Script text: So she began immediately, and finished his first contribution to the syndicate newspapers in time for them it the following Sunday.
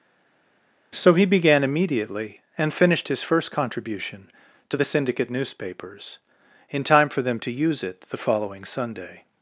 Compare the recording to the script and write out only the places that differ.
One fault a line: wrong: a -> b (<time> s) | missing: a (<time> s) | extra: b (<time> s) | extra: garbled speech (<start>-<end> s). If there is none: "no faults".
wrong: she -> he (1.1 s)
extra: to use (7.4 s)